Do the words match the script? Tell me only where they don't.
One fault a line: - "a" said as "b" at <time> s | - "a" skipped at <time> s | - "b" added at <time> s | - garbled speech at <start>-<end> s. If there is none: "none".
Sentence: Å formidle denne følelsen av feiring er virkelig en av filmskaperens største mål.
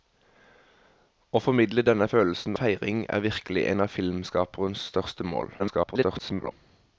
- "av" skipped at 2.6 s
- garbled speech at 5.6-6.5 s